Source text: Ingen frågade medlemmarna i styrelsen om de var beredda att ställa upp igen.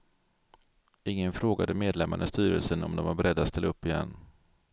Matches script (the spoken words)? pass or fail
pass